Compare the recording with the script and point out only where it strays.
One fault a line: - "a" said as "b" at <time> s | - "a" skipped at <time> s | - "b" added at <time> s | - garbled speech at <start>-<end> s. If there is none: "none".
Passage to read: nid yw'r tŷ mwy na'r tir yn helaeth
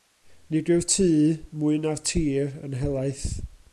none